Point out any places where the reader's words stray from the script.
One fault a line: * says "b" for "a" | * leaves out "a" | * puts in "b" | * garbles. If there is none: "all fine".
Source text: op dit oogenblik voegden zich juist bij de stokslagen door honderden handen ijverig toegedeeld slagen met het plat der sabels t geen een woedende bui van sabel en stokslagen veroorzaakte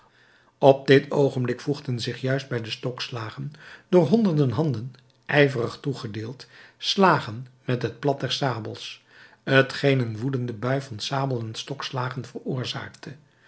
all fine